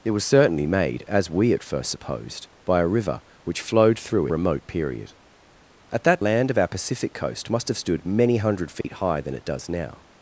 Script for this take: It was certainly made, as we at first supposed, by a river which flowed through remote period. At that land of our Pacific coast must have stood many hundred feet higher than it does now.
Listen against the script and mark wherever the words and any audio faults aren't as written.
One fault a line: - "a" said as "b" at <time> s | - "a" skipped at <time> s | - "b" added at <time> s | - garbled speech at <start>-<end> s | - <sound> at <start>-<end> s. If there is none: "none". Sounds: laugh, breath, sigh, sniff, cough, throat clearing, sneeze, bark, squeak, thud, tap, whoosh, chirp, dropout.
- dropout at 8.8-8.8 s